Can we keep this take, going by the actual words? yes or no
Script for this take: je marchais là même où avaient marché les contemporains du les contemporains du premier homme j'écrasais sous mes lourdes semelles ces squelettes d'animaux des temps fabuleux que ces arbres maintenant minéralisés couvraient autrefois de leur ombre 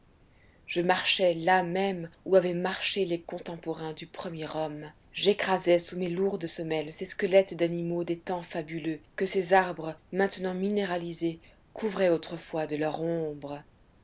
no